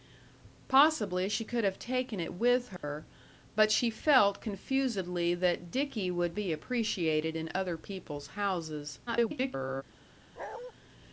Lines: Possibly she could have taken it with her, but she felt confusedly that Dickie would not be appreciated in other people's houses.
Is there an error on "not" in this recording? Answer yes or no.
yes